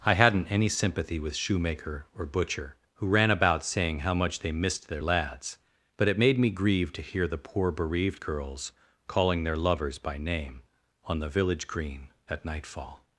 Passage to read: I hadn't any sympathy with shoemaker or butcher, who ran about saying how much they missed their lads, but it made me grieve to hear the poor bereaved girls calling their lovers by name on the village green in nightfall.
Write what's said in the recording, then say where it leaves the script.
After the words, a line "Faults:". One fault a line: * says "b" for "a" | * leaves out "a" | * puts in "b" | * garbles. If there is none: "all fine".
I hadn't any sympathy with shoemaker or butcher, who ran about saying how much they missed their lads, but it made me grieve to hear the poor bereaved girls calling their lovers by name on the village green at nightfall.
Faults:
* says "at" for "in"